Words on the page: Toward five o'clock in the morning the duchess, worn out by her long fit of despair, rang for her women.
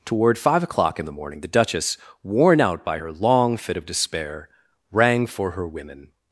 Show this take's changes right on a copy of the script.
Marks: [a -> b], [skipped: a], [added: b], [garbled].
Toward five o'clock in the morning the duchess, worn out by her long fit of despair, rang for her women.